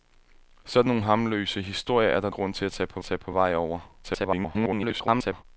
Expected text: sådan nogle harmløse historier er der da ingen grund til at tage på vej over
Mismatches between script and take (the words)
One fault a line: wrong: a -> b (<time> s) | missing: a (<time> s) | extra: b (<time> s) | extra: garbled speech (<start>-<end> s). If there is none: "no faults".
missing: da ingen (2.3 s)
extra: tage på (3.0 s)
extra: garbled speech (4.0-5.4 s)